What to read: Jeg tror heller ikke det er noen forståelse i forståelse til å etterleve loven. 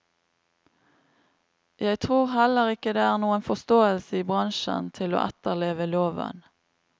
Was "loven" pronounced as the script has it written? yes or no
yes